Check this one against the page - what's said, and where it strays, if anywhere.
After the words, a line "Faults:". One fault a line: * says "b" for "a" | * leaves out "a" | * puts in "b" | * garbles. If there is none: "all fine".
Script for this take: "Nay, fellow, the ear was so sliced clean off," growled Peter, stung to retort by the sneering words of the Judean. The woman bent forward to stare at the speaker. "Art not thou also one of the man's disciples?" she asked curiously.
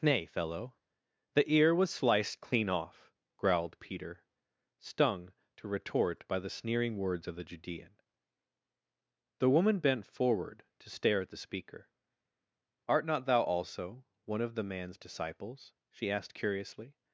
"Nay, fellow, the ear was sliced clean off," growled Peter, stung to retort by the sneering words of the Judean. The woman bent forward to stare at the speaker. "Art not thou also one of the man's disciples?" she asked curiously.
Faults:
* leaves out "so"